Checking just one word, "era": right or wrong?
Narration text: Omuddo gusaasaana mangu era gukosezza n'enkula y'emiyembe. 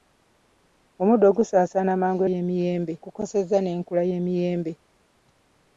wrong